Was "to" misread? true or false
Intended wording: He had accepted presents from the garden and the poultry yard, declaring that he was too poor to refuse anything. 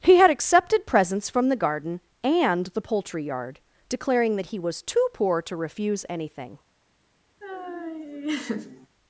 false